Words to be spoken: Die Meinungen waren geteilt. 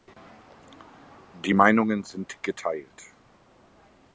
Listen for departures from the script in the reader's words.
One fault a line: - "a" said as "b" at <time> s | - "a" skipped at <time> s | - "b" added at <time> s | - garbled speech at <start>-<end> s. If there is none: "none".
- "waren" said as "sind" at 2.0 s